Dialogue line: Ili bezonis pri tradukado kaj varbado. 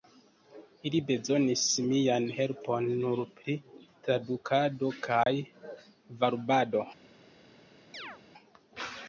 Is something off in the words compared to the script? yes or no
yes